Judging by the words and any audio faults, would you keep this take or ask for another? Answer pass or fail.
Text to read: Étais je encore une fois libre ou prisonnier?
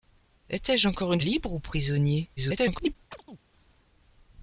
fail